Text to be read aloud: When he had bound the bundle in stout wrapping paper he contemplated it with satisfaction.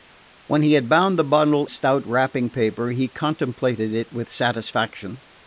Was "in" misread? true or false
true